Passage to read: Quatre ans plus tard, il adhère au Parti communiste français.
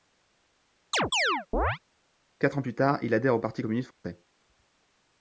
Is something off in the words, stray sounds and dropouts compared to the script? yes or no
yes